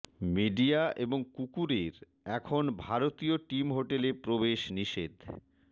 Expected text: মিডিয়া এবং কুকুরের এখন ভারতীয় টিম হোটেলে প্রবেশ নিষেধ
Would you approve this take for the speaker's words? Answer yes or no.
yes